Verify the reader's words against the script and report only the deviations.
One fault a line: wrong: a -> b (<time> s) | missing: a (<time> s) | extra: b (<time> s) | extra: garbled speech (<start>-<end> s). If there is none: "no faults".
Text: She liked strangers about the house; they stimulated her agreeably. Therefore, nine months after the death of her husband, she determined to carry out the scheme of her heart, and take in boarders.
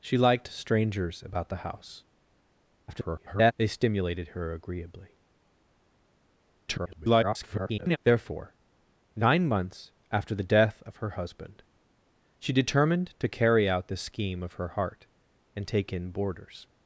extra: garbled speech (2.9-3.5 s)
extra: garbled speech (6.7-8.0 s)